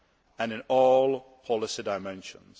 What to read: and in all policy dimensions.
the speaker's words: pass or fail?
pass